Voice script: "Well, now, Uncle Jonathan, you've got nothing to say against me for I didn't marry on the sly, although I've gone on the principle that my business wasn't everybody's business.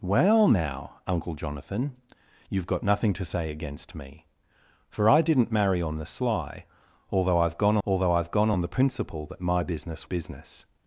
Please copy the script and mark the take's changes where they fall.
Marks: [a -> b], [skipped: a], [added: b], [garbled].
"Well, now, Uncle Jonathan, you've got nothing to say against me for I didn't marry on the sly, although I've gone [added: although I've gone] on the principle that my business [skipped: wasn't everybody's] business.